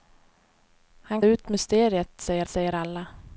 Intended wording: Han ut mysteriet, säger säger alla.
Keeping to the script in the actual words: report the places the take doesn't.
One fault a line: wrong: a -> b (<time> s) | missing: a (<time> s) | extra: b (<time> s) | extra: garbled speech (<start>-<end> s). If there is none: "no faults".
no faults